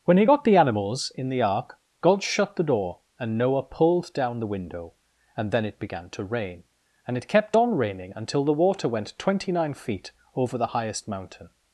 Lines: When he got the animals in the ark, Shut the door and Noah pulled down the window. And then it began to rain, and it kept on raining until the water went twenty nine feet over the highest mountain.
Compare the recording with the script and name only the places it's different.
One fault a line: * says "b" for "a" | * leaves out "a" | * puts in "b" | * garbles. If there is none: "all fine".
* puts in "God"